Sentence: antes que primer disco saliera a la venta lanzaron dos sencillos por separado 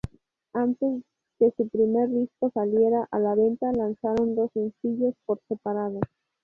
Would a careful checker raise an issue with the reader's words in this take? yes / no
yes